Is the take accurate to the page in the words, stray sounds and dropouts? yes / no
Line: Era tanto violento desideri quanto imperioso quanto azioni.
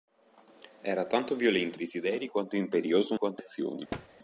no